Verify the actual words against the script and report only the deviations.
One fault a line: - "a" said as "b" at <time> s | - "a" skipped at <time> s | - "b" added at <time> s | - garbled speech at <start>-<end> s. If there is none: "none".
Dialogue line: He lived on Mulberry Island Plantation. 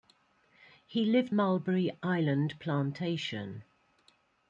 - "on" skipped at 1.4 s